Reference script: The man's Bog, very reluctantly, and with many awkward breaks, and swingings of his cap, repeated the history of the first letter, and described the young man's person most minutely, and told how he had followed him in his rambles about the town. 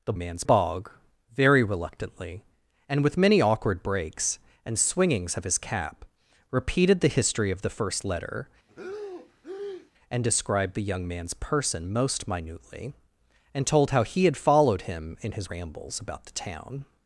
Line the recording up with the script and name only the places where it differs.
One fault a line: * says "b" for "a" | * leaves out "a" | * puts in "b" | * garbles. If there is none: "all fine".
all fine